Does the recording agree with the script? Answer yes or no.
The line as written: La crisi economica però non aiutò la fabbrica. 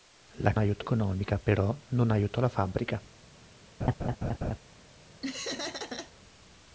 no